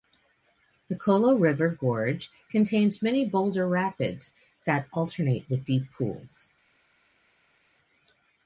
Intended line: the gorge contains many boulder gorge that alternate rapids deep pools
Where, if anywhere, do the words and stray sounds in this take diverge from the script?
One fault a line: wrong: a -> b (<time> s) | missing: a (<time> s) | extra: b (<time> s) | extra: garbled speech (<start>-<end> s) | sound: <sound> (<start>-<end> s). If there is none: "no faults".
extra: colo river (0.9 s)
wrong: gorge -> rapids (3.7 s)
wrong: rapids -> with (5.5 s)